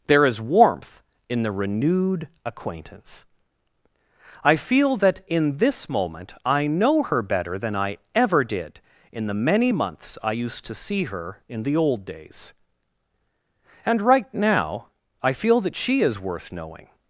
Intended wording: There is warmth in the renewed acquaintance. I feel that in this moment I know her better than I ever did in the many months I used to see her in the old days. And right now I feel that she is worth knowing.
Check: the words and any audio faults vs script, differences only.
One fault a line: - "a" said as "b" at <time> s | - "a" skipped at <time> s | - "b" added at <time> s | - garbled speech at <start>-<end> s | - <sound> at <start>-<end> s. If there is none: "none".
none